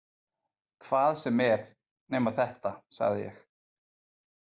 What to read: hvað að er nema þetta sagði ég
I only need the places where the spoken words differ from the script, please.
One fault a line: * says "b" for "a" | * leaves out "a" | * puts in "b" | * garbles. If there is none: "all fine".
* says "sem" for "að"